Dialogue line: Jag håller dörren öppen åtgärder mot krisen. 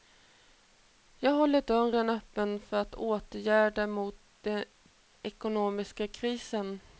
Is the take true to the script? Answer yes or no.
no